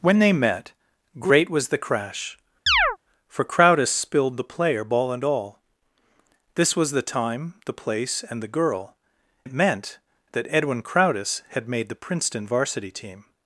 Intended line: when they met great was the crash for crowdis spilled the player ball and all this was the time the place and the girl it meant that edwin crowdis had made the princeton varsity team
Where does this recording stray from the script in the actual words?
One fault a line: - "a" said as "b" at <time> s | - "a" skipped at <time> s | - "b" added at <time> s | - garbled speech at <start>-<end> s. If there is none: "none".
none